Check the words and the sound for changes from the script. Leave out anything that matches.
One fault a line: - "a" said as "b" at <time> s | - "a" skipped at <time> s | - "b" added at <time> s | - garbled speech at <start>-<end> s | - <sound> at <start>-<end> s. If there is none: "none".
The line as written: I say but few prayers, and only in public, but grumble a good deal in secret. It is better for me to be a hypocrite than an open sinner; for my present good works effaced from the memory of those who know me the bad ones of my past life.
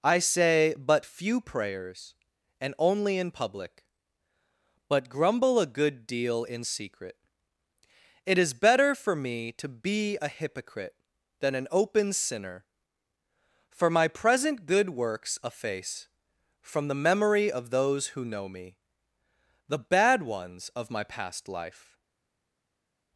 - "effaced" said as "efface" at 15.4 s